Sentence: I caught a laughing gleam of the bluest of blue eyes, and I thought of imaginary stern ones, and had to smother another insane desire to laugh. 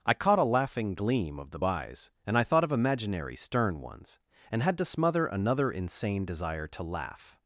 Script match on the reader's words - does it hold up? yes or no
no